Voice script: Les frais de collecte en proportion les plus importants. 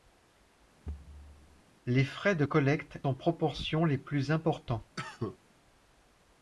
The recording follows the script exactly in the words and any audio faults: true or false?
false